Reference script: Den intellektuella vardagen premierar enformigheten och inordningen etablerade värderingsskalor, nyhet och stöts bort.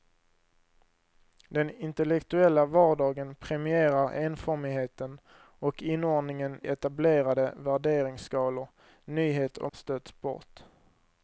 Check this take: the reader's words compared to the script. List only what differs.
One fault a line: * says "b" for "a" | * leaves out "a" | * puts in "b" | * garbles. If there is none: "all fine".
all fine